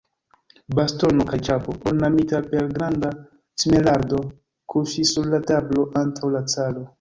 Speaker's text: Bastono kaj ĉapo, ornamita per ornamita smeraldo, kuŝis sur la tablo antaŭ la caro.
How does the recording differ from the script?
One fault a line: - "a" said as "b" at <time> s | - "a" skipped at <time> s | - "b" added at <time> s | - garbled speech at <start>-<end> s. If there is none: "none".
- "ornamita" said as "granda" at 2.8 s